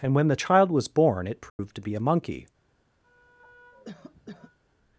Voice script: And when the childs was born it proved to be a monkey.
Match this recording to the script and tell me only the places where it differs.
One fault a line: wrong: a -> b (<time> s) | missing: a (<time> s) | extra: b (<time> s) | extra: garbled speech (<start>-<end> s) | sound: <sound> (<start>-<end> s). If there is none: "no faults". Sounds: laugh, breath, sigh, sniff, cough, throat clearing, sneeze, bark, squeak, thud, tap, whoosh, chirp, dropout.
wrong: childs -> child (0.3 s)
sound: dropout (1.5-1.6 s)
sound: cough (3.0-4.6 s)